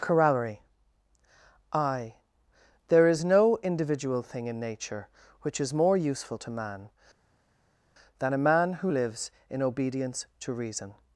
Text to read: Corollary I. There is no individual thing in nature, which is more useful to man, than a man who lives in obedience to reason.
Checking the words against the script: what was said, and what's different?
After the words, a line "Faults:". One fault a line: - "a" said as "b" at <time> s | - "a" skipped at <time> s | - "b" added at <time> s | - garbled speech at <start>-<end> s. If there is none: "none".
Corollary I. There is no individual thing in nature, which is more useful to man, than a man who lives in obedience to reason.
Faults:
none